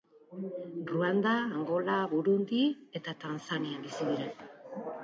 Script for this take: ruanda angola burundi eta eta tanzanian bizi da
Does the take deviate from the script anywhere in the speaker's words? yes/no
yes